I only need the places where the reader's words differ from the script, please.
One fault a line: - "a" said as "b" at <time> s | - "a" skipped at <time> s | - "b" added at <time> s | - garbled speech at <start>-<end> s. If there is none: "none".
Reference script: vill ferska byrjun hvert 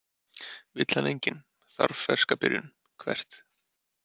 - "hann enginn þarf" added at 0.9 s